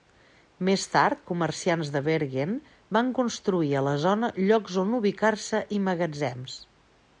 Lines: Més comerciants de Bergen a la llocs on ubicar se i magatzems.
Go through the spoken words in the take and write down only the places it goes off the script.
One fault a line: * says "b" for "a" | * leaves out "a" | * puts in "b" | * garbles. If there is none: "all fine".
* puts in "tard"
* puts in "van construir"
* puts in "zona"